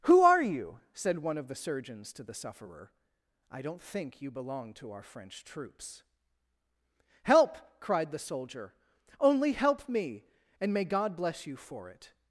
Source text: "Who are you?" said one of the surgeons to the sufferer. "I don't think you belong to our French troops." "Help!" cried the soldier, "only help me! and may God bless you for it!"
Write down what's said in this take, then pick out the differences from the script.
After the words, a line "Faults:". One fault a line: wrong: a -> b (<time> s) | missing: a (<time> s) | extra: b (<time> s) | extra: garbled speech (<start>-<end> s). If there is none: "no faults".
"Who are you?" said one of the surgeons to the sufferer. "I don't think you belong to our French troops." "Help!" cried the soldier, "only help me! and may God bless you for it!"
Faults:
no faults